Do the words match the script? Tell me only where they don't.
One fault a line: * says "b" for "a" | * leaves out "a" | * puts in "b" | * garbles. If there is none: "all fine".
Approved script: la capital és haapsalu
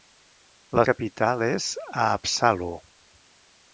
all fine